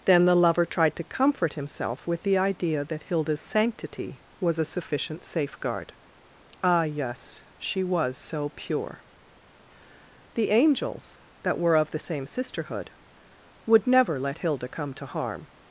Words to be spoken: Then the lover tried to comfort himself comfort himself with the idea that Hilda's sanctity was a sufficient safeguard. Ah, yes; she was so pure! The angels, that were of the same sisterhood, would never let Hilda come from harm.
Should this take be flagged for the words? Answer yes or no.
yes